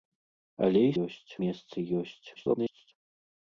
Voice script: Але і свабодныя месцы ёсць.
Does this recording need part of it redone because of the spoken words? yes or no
yes